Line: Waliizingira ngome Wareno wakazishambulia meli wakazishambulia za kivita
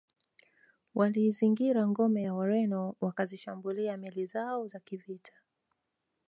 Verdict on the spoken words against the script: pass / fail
fail